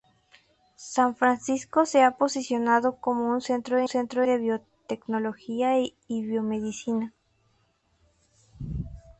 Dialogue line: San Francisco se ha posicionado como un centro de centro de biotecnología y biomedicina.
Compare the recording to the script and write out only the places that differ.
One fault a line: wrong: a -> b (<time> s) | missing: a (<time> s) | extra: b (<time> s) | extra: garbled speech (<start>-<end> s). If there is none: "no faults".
no faults